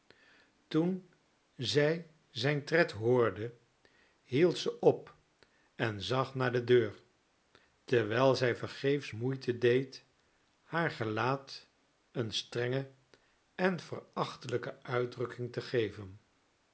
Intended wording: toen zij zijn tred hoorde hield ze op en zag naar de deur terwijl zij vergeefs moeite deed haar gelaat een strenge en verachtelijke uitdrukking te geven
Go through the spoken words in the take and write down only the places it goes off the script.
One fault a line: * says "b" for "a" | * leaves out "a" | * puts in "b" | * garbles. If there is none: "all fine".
all fine